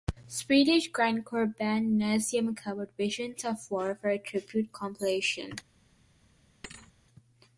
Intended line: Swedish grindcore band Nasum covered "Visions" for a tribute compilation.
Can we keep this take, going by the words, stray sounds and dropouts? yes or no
no